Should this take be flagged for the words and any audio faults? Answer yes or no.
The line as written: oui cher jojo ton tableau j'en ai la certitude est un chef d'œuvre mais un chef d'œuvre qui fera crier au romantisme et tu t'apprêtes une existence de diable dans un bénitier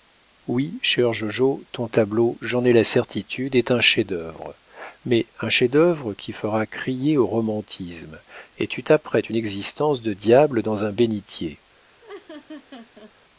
yes